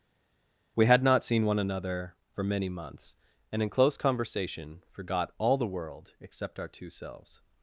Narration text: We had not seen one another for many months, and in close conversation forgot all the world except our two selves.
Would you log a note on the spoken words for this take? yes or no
no